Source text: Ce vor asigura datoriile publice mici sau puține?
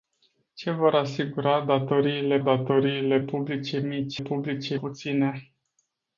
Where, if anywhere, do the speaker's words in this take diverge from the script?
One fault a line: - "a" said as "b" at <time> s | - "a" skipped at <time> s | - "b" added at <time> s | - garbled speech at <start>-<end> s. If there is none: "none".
- "datoriile" added at 2.4 s
- "sau" said as "publice" at 4.2 s